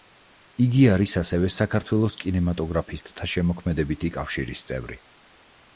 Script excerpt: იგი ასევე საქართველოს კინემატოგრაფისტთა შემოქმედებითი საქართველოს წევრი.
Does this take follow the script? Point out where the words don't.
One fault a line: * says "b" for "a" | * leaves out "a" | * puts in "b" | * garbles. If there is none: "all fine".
* puts in "არის"
* says "კავშირის" for "საქართველოს"